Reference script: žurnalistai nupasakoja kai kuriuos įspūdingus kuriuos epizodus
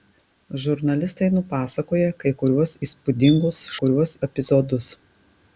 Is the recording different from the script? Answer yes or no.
no